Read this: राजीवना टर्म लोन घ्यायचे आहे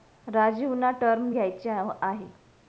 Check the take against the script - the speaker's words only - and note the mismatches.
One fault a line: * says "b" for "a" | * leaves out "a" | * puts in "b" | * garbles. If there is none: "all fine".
* leaves out "लोन"